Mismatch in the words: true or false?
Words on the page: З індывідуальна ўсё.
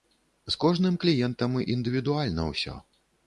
true